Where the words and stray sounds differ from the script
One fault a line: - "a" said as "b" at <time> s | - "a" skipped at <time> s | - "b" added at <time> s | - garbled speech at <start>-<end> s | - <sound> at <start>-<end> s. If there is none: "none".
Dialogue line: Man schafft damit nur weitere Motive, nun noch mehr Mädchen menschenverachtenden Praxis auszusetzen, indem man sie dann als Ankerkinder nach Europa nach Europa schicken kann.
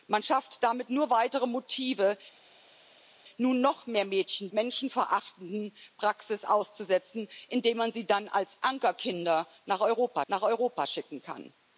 none